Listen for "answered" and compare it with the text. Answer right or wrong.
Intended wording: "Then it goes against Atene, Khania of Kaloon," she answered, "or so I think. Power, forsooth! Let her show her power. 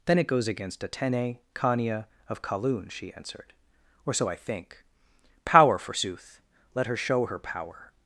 right